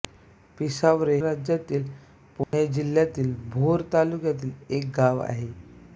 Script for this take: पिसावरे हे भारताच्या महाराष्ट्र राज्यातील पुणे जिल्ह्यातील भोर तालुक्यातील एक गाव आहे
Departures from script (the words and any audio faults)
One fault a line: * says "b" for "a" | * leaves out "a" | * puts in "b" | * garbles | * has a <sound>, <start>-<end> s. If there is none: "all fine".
* leaves out "हे भारताच्या महाराष्ट्र"
* has a dropout, 2.4-2.5 s